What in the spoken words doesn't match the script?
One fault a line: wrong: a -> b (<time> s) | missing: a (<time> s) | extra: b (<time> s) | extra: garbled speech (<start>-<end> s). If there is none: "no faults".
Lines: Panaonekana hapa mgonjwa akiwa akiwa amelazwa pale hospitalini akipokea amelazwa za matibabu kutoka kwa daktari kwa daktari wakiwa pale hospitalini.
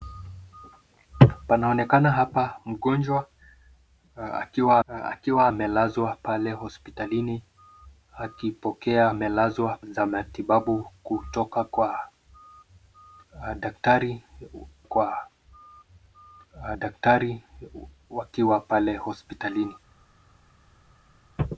no faults